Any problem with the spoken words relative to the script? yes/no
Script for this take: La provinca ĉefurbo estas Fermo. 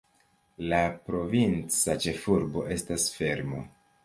no